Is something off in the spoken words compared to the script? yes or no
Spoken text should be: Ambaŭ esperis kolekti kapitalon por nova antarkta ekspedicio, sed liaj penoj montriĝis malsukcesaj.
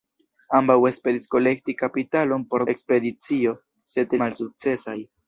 yes